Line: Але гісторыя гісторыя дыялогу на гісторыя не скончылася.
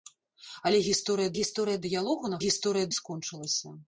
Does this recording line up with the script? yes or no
yes